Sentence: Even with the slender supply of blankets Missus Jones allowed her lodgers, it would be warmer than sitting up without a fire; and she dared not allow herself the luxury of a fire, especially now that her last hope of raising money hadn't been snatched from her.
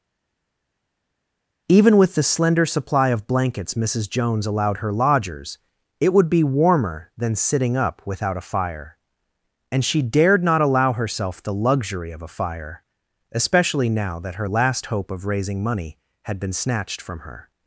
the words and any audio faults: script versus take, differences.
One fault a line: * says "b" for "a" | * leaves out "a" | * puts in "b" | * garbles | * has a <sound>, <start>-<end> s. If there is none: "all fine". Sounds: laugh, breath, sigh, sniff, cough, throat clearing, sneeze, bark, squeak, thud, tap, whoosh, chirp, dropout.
* says "had" for "hadn't"